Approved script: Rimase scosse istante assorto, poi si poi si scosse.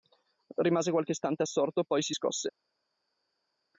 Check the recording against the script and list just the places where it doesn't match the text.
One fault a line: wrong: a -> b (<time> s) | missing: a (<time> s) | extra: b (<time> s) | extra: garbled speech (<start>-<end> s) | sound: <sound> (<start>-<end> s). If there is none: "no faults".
wrong: scosse -> qualche (0.9 s)
missing: poi si (2.1 s)